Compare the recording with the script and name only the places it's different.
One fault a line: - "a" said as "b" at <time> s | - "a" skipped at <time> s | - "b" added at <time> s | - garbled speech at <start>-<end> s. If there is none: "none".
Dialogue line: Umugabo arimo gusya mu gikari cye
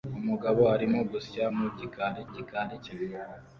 - "gikari" added at 2.3 s